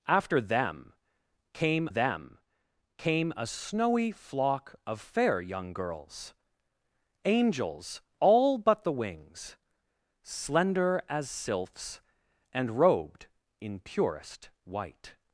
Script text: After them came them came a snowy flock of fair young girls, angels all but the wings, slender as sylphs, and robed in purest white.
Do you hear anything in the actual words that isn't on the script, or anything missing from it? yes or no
no